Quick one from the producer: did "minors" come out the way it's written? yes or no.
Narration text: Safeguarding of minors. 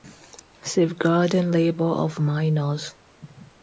yes